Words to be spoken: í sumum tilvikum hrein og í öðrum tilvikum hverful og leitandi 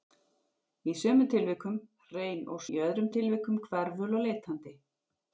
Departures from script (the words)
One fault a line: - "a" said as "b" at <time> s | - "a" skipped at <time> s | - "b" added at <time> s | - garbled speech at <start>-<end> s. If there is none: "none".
none